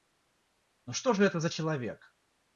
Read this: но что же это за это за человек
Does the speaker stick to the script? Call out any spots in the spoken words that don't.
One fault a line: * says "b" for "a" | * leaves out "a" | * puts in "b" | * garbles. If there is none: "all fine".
* leaves out "это за"